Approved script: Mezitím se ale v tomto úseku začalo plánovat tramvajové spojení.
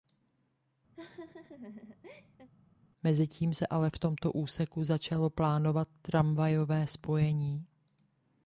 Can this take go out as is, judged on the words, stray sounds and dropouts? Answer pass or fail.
fail